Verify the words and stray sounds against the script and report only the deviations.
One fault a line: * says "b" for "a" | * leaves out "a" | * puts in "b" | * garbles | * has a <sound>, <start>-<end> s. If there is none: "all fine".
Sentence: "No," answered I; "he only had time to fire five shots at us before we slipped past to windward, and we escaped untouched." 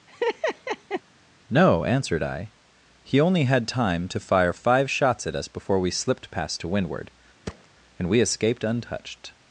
* has a laugh, 0.1-1.0 s
* has a thud, 7.5-7.7 s